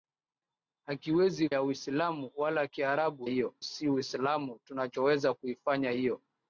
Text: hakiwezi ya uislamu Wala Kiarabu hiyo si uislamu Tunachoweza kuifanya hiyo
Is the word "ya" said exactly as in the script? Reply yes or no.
yes